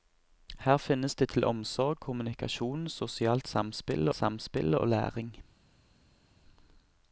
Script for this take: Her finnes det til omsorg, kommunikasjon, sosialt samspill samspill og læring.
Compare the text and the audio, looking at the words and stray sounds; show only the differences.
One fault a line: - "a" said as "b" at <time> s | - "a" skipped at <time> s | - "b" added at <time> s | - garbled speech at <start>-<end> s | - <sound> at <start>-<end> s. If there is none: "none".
none